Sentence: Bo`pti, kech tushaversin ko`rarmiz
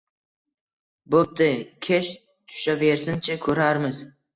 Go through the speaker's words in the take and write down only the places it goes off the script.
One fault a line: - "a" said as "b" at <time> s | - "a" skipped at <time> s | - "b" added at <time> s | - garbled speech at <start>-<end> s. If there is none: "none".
- "chi" added at 3.3 s